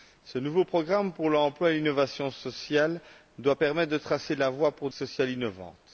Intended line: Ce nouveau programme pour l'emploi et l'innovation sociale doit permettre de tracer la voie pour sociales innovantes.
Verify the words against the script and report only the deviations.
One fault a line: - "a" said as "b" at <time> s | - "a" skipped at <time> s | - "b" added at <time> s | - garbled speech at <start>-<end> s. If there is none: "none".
none